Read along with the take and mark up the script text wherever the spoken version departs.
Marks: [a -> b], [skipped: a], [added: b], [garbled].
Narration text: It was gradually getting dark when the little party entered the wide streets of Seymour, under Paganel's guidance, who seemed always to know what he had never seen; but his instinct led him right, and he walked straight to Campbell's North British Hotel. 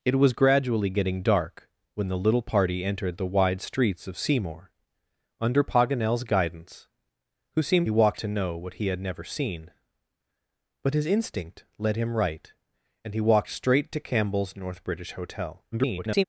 It was gradually getting dark when the little party entered the wide streets of Seymour, under Paganel's guidance, who seemed [always -> walked] to know what he had never seen; but his instinct led him right, and he walked straight to Campbell's North British Hotel. [garbled]